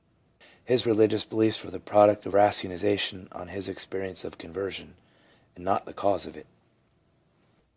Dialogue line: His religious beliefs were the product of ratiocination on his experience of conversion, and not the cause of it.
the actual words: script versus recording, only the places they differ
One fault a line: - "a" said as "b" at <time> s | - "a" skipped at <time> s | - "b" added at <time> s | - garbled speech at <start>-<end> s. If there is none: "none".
none